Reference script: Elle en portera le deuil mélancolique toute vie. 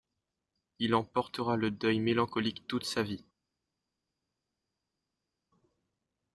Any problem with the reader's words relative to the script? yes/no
yes